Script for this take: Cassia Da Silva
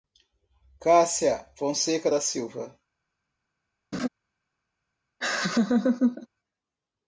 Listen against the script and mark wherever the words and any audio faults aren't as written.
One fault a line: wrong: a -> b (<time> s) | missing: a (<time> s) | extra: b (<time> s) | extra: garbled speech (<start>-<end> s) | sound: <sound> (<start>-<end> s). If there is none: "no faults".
extra: Fonseca (1.6 s)
sound: laugh (3.9-4.1 s)
sound: laugh (5.2-6.3 s)